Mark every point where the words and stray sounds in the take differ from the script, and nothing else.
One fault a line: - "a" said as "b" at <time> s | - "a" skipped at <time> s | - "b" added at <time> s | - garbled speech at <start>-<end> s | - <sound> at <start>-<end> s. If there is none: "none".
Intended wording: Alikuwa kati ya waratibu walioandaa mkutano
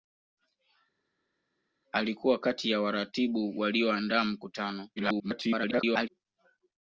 - garbled speech at 5.0-6.1 s